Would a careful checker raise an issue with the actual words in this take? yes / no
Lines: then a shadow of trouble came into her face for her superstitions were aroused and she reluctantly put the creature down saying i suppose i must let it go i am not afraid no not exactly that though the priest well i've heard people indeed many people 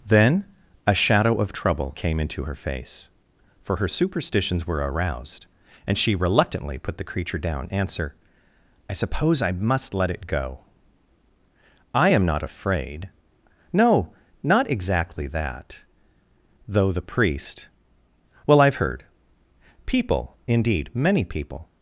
yes